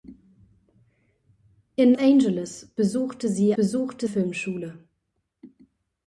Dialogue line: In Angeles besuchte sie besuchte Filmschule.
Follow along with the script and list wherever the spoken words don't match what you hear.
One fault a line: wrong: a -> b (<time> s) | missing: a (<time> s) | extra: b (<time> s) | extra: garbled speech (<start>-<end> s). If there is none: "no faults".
no faults